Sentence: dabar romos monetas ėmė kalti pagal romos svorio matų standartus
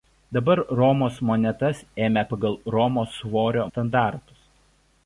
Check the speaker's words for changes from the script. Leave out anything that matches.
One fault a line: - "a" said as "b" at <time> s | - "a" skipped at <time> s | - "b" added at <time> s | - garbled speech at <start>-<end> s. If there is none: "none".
- "kalti" skipped at 2.2 s
- "matų" skipped at 3.7 s